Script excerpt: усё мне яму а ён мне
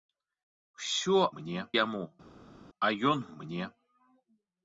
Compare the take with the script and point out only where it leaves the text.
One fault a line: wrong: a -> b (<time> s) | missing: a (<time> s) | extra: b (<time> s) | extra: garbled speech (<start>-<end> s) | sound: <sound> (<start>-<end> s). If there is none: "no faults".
no faults